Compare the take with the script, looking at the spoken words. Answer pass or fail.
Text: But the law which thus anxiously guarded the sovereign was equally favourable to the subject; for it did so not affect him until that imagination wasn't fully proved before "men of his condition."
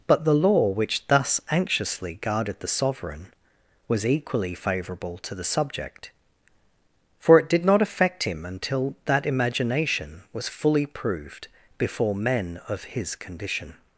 fail